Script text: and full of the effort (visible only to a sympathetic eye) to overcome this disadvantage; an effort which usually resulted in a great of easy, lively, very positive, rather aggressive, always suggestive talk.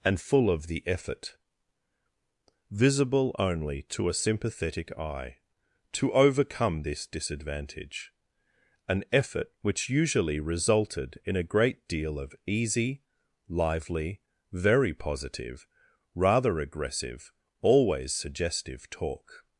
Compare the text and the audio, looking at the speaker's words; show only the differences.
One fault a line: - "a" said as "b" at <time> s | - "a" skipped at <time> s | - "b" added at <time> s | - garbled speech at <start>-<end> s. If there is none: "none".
- "deal" added at 11.9 s